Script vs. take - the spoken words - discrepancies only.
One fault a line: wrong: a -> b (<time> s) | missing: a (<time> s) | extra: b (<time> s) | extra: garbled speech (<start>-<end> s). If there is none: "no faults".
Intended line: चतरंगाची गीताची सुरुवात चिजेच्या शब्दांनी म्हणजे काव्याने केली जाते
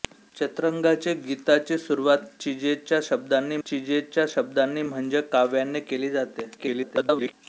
extra: चिजेच्या शब्दांनी (3.6 s)
extra: garbled speech (6.6-7.3 s)